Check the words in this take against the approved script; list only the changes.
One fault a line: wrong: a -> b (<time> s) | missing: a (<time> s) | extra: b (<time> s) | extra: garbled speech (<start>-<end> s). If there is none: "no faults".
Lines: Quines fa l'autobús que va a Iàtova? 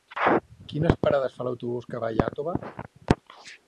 extra: parades (1.0 s)